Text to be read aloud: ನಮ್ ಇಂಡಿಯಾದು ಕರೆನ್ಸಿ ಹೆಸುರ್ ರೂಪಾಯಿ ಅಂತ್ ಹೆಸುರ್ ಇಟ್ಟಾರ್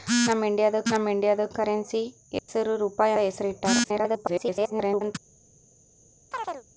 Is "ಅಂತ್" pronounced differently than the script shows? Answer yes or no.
yes